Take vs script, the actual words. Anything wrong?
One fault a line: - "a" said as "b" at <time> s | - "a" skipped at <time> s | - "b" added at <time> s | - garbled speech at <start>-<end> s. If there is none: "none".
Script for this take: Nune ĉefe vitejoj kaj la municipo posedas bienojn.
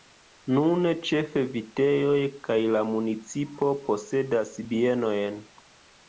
none